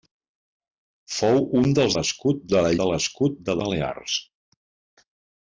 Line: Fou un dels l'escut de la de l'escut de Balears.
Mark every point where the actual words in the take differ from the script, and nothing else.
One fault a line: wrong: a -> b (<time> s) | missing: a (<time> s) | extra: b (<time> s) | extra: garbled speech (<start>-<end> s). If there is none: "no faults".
no faults